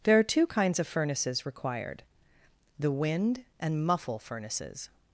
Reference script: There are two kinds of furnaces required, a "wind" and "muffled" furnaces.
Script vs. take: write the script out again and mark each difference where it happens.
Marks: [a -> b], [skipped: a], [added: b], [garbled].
There are two kinds of furnaces required, [a -> the] "wind" and ["muffled" -> muffle] furnaces.